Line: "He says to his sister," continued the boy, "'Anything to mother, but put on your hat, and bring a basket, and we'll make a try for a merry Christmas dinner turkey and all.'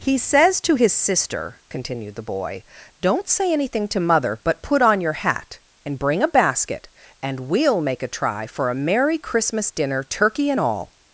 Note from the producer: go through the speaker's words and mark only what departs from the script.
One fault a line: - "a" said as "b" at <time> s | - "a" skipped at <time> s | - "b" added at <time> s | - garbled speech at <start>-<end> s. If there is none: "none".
- "Don't say" added at 3.0 s